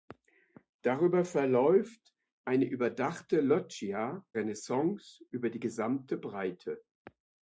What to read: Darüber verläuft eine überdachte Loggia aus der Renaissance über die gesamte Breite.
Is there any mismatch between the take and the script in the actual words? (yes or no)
yes